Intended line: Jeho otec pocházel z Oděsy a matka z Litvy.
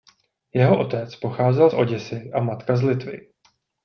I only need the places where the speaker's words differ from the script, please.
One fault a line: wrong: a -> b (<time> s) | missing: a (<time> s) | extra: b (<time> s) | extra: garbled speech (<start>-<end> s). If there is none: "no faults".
no faults